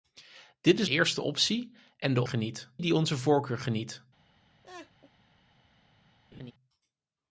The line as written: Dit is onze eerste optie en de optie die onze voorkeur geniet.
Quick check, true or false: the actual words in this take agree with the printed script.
false